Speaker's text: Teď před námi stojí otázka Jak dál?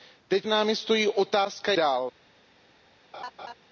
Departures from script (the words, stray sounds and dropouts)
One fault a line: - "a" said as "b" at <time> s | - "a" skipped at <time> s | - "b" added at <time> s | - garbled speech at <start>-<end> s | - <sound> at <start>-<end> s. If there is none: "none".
- "před" skipped at 0.5 s
- "Jak" skipped at 1.7 s
- laugh at 3.1-3.5 s